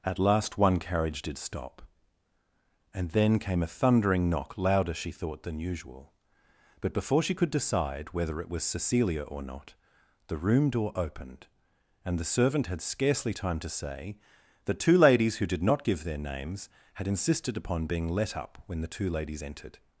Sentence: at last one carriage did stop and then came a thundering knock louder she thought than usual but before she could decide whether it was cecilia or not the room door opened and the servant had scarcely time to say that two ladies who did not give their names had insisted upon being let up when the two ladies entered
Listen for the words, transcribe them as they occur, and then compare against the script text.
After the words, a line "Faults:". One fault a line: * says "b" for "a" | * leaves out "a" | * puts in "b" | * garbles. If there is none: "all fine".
at last one carriage did stop and then came a thundering knock louder she thought than usual but before she could decide whether it was cecilia or not the room door opened and the servant had scarcely time to say that two ladies who did not give their names had insisted upon being let up when the two ladies entered
Faults:
all fine